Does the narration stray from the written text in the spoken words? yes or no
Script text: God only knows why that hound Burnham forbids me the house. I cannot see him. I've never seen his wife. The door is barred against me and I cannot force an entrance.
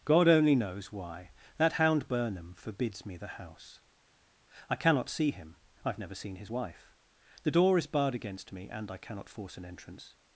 no